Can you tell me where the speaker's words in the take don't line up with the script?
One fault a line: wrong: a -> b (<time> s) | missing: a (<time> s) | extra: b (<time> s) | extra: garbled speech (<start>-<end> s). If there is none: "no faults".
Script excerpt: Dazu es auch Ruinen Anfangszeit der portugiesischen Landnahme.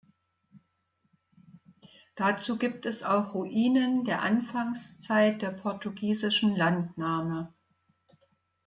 extra: gibt (2.6 s)
extra: der (4.0 s)